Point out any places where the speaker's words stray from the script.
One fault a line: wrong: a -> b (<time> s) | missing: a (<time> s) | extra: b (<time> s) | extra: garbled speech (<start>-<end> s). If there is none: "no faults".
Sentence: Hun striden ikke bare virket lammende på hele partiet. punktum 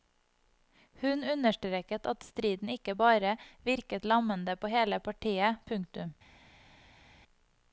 extra: understreket at (1.3 s)